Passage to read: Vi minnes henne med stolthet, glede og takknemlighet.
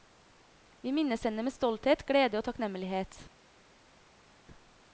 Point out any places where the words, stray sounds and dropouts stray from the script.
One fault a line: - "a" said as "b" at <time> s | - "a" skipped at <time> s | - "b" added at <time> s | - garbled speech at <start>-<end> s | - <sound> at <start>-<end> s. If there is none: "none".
none